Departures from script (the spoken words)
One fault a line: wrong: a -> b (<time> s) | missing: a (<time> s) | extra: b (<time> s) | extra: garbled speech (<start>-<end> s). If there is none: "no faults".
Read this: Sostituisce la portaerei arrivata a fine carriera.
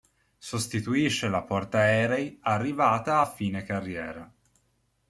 no faults